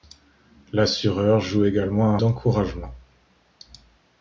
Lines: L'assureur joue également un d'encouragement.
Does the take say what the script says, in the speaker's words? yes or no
yes